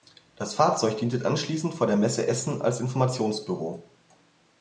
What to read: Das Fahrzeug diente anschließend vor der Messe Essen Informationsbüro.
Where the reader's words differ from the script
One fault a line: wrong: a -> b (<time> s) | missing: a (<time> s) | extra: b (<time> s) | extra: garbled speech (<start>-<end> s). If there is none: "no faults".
extra: als (2.6 s)